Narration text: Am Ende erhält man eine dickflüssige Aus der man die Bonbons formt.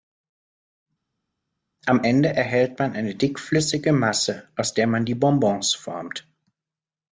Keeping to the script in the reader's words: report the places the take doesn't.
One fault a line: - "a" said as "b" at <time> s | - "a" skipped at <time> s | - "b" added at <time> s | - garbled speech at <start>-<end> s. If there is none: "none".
- "Masse" added at 3.9 s